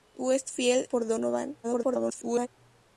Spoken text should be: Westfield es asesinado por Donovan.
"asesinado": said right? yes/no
no